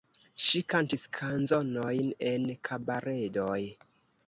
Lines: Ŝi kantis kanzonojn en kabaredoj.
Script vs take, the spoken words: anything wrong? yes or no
no